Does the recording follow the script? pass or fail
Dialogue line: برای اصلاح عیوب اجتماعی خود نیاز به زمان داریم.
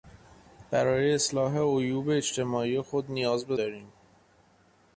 fail